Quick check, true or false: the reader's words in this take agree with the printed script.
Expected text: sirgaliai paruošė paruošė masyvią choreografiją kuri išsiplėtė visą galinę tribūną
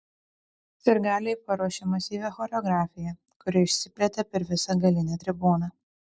false